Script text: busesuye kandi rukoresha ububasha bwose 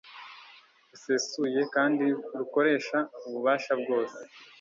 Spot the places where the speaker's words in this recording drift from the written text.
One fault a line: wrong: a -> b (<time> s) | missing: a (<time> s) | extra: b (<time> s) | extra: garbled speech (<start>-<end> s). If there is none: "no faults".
no faults